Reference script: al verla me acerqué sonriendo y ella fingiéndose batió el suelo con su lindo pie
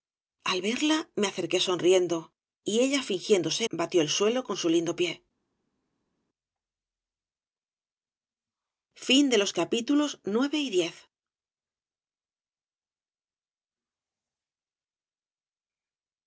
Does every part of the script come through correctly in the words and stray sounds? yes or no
yes